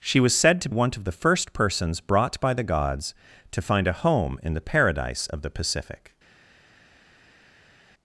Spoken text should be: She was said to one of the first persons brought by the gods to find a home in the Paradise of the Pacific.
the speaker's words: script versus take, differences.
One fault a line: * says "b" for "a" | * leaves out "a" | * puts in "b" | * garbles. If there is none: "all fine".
all fine